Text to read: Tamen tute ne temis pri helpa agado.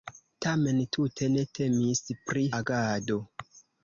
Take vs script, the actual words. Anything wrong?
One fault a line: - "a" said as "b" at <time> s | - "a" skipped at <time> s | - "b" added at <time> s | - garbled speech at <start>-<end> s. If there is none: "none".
- "helpa" skipped at 2.5 s